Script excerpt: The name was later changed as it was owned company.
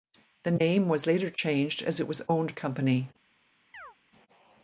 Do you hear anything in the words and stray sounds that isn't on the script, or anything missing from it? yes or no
yes